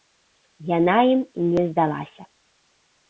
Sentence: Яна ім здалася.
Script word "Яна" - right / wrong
right